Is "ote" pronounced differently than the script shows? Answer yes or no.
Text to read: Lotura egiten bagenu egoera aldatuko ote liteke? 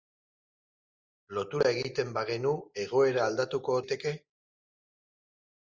yes